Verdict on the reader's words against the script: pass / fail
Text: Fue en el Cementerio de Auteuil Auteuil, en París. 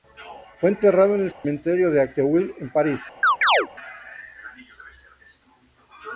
fail